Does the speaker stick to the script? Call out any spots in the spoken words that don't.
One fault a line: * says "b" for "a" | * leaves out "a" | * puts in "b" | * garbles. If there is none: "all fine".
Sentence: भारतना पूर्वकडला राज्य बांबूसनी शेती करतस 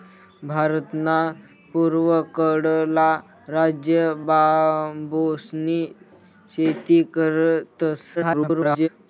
* garbles